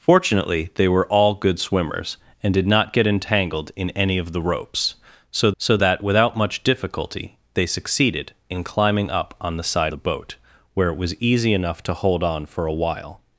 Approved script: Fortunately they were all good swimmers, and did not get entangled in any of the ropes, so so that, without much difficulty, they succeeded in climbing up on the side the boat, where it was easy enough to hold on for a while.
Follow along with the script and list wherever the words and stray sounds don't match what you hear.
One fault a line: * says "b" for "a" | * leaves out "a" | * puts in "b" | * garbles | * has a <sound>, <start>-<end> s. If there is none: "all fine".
all fine